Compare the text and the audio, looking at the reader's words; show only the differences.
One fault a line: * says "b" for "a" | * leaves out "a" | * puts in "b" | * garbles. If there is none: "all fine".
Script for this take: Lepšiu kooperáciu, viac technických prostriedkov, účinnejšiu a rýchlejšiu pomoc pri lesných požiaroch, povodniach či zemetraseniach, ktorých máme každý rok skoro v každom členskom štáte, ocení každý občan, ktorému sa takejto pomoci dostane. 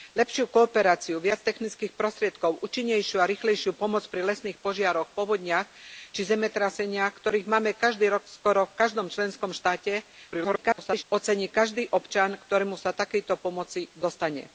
* garbles